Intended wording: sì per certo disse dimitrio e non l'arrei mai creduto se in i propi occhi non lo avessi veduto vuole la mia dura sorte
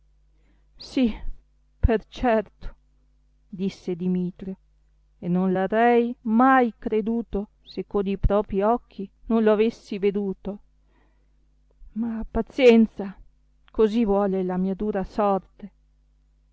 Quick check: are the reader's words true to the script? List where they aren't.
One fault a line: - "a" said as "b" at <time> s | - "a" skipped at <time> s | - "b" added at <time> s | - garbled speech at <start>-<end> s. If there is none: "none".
- "in" said as "con" at 7.8 s
- "ma pazienza così" added at 11.9 s